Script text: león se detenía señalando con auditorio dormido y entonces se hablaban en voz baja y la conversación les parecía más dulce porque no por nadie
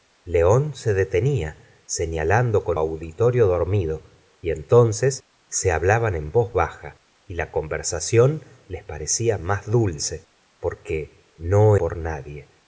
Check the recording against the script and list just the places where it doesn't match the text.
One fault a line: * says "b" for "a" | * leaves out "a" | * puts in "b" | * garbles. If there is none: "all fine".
all fine